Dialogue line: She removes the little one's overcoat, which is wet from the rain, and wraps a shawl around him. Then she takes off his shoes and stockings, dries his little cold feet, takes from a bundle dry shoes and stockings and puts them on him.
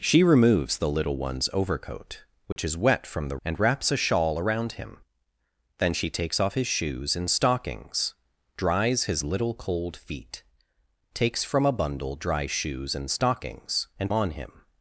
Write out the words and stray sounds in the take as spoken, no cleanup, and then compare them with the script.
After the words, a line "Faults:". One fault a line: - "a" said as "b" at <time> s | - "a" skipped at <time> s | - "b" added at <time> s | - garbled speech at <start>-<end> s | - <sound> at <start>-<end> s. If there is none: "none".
She removes the little one's overcoat, which is wet from the and wraps a shawl around him. Then she takes off his shoes and stockings, dries his little cold feet, takes from a bundle dry shoes and stockings and on him.
Faults:
- dropout at 2.5-2.6 s
- "rain" skipped at 3.4 s
- "puts them" skipped at 14.1 s